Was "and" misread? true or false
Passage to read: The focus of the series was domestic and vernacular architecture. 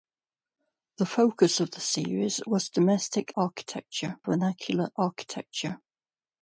true